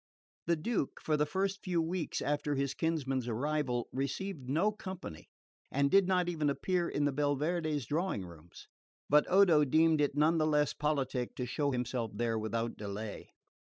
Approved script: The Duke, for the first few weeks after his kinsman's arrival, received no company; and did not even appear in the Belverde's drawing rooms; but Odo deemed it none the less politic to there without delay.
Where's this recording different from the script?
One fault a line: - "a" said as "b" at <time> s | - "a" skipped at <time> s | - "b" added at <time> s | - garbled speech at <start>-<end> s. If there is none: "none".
- "show himself" added at 11.4 s